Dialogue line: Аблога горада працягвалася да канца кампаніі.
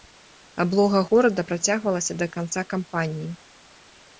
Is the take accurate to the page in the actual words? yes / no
yes